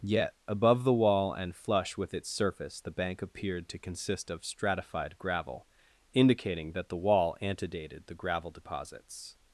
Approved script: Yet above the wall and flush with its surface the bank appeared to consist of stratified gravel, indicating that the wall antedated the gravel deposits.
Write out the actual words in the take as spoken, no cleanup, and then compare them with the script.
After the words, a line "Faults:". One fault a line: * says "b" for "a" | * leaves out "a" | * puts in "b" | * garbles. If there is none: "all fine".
Yet above the wall and flush with its surface the bank appeared to consist of stratified gravel, indicating that the wall antedated the gravel deposits.
Faults:
all fine